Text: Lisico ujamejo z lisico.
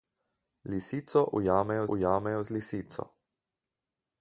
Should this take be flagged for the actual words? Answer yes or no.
yes